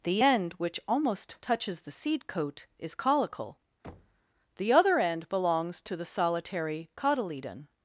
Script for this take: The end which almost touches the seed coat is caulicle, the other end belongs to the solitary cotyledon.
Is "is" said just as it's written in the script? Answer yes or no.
yes